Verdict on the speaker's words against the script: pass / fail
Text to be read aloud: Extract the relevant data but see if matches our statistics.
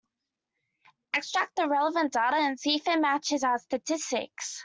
fail